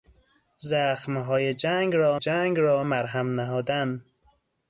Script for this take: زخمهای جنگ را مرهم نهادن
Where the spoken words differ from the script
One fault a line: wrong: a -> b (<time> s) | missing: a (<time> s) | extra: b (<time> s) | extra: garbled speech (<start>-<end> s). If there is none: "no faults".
extra: جنگ را (2.2 s)